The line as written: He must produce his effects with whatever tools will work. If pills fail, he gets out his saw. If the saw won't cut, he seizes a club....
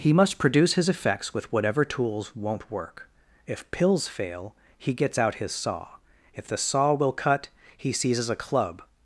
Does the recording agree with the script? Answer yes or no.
no